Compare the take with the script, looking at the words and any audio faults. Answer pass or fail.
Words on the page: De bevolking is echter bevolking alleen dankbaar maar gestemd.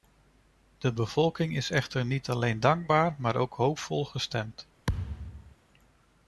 fail